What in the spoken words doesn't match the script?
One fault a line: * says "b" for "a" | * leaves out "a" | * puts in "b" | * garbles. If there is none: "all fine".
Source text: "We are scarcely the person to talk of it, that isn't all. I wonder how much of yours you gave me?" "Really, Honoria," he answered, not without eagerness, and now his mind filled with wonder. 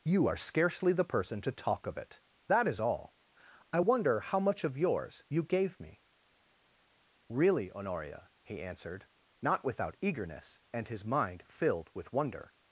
* says "You" for "We"
* says "is" for "isn't"
* leaves out "now"